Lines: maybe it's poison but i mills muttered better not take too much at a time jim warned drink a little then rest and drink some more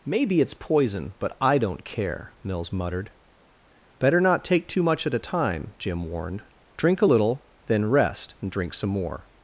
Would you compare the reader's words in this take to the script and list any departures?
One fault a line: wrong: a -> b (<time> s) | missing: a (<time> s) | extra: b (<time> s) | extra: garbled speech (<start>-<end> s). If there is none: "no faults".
extra: don't care (1.6 s)